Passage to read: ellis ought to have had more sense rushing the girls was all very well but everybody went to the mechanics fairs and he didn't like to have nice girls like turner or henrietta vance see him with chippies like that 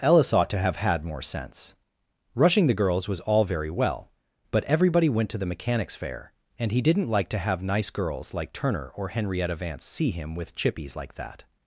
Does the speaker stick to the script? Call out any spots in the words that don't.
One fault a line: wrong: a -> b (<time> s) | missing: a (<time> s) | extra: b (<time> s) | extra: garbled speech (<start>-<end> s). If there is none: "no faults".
wrong: fairs -> fair (6.0 s)